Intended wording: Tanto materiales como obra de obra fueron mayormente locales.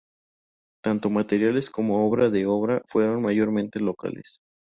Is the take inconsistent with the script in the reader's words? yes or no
no